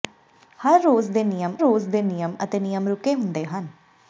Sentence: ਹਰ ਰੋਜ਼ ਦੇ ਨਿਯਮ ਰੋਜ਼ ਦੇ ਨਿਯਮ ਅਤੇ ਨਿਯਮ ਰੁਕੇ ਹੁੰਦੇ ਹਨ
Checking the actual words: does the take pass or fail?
pass